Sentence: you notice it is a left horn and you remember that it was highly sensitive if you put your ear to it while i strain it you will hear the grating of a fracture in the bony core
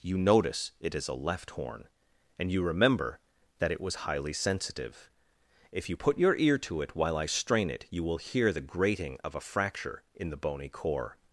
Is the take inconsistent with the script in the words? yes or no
no